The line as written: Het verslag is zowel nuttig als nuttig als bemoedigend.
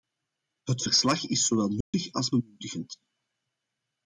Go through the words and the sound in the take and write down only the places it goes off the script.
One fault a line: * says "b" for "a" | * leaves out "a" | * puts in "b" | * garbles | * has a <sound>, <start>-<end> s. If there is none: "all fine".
* has a dropout, 1.8-1.9 s
* leaves out "nuttig als"